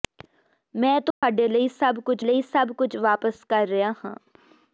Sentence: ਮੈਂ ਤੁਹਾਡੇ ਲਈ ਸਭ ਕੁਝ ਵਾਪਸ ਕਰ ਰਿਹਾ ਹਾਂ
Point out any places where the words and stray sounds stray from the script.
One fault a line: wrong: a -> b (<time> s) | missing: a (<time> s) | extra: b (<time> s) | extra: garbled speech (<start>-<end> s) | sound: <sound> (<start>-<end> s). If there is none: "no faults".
sound: dropout (1.1-1.2 s)
extra: ਲਈ ਸਭ ਕੁਝ (2.2 s)